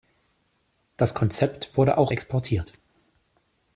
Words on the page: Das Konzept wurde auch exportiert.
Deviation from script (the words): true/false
false